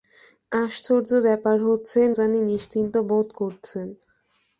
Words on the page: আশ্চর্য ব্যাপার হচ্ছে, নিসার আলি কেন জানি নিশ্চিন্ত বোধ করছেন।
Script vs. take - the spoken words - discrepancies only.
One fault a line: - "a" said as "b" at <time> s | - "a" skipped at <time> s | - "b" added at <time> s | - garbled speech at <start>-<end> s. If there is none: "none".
- "নিসার আলি কেন" skipped at 2.0 s